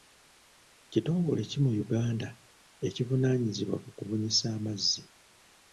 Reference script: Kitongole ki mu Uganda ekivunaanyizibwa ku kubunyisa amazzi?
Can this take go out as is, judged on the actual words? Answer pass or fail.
pass